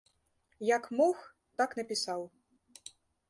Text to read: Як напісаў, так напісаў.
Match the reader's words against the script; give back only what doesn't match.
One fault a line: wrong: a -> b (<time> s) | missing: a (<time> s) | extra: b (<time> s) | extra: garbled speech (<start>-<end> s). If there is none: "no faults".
wrong: напісаў -> мог (1.0 s)